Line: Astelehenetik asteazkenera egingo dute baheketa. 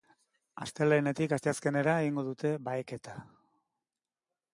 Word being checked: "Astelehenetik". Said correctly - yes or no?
yes